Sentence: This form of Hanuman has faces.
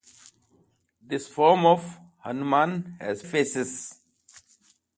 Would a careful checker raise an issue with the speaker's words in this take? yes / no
no